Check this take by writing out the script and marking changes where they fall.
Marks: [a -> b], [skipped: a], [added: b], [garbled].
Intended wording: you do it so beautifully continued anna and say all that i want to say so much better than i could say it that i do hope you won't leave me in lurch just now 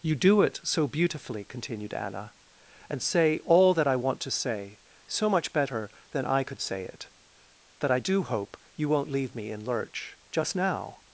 you do it so beautifully continued anna and say all that i want to say so much better than i could say it that i do hope you won't leave me in lurch just now